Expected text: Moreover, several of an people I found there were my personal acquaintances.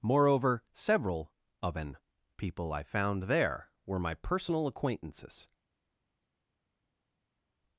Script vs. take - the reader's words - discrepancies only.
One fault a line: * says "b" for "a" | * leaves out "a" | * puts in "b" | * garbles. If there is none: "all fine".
all fine